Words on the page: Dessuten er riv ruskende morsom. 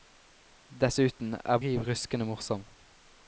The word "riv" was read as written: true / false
true